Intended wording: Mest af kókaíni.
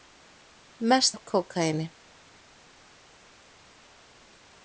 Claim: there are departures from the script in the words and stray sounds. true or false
false